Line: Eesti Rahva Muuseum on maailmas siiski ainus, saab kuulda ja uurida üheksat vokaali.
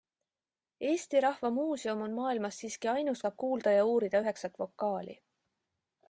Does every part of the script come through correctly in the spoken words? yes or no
yes